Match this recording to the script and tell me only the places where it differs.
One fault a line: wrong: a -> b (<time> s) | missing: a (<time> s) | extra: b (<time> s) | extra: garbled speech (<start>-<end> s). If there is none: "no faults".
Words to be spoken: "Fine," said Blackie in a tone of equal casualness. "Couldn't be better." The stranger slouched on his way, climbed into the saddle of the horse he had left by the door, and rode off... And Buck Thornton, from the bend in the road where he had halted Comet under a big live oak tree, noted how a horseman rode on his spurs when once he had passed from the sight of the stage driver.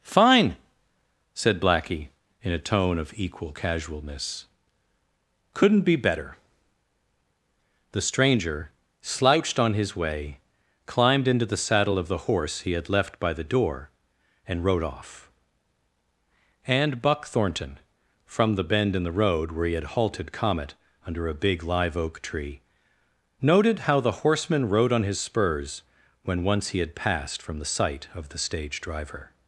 wrong: a -> the (24.0 s)